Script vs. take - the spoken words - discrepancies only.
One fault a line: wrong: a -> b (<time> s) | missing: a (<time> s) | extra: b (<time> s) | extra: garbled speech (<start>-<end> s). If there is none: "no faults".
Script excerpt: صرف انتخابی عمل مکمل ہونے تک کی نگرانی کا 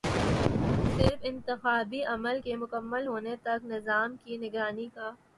extra: کے (2.4 s)
extra: نظام (3.6 s)